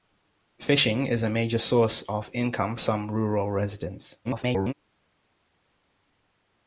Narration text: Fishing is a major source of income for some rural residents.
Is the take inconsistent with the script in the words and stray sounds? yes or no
yes